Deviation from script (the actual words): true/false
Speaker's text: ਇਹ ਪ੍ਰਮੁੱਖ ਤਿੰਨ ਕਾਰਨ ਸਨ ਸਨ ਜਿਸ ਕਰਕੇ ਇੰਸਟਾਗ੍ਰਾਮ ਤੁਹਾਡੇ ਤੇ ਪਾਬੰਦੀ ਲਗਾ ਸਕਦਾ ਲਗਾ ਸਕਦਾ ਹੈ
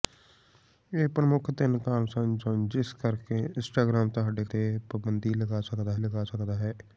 false